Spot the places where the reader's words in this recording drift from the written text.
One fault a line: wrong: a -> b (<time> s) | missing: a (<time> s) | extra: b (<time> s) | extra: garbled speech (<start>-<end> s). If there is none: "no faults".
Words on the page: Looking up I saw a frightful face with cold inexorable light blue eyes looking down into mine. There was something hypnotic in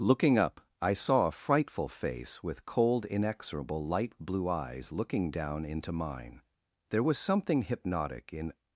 no faults